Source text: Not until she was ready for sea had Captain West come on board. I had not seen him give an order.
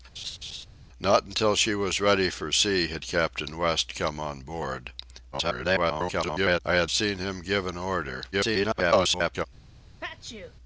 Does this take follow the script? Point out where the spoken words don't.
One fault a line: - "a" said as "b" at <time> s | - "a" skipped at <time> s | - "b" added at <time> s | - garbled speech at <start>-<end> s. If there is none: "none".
- garbled speech at 5.3-6.6 s
- "not" skipped at 6.9 s
- garbled speech at 8.3-9.5 s